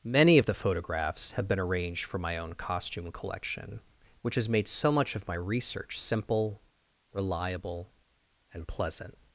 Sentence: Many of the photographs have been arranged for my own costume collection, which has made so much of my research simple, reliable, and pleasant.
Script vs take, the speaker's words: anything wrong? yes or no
no